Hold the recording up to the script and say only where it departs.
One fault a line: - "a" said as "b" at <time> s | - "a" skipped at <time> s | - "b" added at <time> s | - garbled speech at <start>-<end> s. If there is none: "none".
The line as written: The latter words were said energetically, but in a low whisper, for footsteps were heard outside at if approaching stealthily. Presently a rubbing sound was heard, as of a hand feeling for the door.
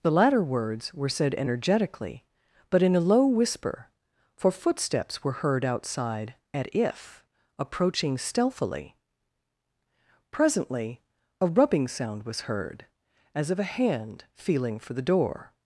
none